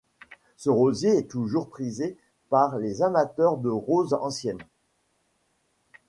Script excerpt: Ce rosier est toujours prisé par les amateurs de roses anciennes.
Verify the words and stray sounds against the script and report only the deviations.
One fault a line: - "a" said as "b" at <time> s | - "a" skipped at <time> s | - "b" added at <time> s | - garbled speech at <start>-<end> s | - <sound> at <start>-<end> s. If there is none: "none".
none